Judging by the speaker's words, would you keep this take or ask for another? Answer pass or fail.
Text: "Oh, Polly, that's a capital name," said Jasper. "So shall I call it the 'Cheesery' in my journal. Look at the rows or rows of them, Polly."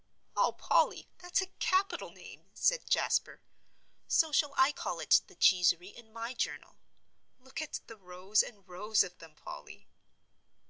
fail